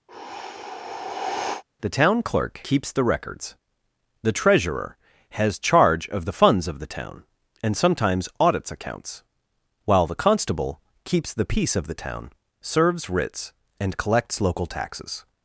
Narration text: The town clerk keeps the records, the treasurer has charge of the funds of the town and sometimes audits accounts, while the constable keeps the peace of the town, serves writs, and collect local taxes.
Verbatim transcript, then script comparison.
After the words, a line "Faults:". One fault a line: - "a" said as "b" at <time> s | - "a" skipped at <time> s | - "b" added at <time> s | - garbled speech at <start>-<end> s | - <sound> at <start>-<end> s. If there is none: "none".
The town clerk keeps the records, the treasurer has charge of the funds of the town and sometimes audits accounts, while the constable keeps the peace of the town, serves writs, and collects local taxes.
Faults:
- sigh at 0.1-1.6 s
- "collect" said as "collects" at 14.0 s